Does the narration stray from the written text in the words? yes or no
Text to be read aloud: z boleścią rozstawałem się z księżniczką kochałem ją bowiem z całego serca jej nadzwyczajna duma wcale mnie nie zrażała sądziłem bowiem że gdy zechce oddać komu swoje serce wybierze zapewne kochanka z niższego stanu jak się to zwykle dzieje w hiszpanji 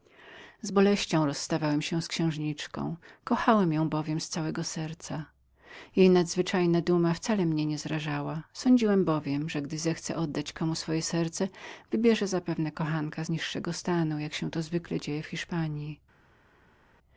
no